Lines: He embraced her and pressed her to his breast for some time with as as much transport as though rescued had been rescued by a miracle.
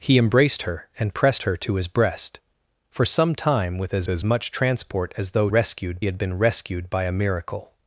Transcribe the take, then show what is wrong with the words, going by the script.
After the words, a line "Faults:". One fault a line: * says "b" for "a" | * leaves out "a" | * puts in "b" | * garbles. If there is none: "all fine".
He embraced her and pressed her to his breast for some time with as as much transport as though rescued had been rescued by a miracle.
Faults:
all fine